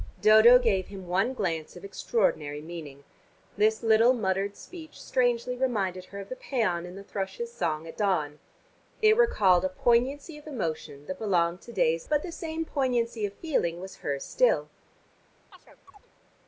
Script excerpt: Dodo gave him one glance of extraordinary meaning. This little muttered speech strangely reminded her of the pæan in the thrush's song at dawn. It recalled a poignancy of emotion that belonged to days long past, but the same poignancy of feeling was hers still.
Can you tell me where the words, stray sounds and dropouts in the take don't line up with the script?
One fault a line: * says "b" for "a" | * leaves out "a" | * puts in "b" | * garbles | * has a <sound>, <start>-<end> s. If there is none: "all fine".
* leaves out "long past"
* has a chirp, 15.5-16.1 s